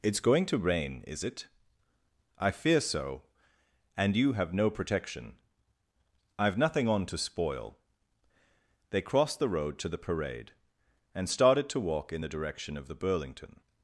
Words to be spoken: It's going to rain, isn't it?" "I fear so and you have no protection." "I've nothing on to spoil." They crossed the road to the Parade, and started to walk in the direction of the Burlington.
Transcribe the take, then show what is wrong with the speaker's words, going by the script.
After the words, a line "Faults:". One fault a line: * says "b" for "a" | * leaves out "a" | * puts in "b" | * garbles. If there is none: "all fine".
It's going to rain, is it?" "I fear so and you have no protection." "I've nothing on to spoil." They crossed the road to the Parade, and started to walk in the direction of the Burlington.
Faults:
* says "is" for "isn't"